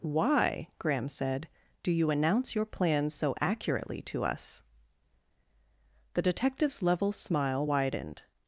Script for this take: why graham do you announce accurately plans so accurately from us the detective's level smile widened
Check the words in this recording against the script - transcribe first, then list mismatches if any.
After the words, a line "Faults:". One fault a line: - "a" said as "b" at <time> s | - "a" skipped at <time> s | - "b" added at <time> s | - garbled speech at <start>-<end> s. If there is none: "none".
why graham said do you announce your plans so accurately to us the detective's level smile widened
Faults:
- "said" added at 1.1 s
- "accurately" said as "your" at 2.5 s
- "from" said as "to" at 4.0 s